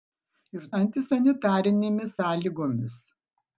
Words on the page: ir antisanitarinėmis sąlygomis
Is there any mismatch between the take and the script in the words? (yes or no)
no